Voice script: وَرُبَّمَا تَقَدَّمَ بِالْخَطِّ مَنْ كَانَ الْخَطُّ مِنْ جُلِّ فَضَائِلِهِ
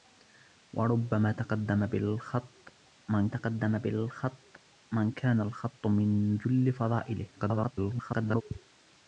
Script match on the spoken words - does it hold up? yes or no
no